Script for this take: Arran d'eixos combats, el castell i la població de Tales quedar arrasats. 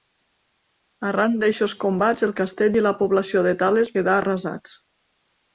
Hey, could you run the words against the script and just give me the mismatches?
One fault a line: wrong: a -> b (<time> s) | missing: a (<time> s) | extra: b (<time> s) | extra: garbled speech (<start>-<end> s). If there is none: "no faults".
no faults